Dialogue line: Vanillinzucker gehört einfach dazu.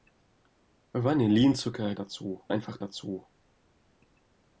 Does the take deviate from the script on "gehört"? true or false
true